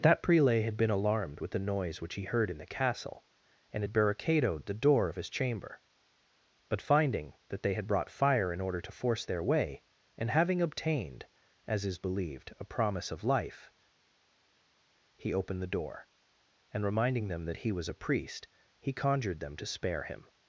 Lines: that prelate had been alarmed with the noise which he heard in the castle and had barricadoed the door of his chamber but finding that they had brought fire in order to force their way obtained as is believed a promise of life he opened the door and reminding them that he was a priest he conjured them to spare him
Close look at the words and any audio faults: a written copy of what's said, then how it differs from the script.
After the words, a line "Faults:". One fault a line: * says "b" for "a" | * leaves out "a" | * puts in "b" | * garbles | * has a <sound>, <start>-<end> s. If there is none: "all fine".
that prelate had been alarmed with the noise which he heard in the castle and had barricadoed the door of his chamber but finding that they had brought fire in order to force their way and having obtained as is believed a promise of life he opened the door and reminding them that he was a priest he conjured them to spare him
Faults:
* puts in "and having"